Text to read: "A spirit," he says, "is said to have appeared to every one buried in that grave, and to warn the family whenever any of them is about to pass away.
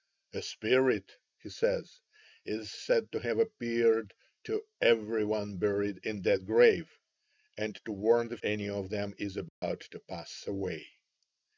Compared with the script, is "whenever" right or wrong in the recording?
wrong